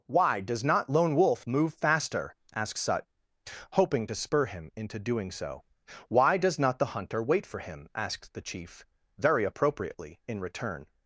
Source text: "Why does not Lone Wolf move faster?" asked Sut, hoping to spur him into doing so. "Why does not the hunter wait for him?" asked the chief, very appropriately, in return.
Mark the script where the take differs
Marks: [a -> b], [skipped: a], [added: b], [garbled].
"Why does not Lone Wolf move faster?" asked Sut, hoping to spur him into doing so. "Why does not the hunter wait for him?" asked the chief, very appropriately, in return.